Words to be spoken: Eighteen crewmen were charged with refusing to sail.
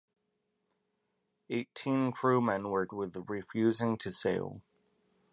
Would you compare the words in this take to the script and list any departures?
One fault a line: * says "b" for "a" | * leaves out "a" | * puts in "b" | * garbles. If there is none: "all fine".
* leaves out "charged"